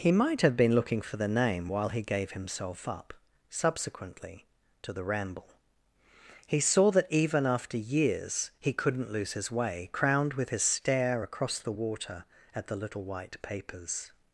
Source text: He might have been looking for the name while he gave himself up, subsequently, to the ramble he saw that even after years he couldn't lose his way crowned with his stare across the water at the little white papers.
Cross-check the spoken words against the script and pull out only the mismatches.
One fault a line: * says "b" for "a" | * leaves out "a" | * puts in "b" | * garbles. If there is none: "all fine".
all fine